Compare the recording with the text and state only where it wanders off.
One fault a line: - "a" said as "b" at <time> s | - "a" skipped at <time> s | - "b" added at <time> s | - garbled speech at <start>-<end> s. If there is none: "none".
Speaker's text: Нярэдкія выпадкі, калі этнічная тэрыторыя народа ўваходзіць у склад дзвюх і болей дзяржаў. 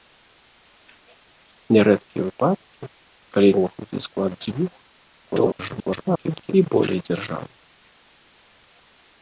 - "этнічная тэрыторыя народа" skipped at 3.5 s
- garbled speech at 5.2-6.5 s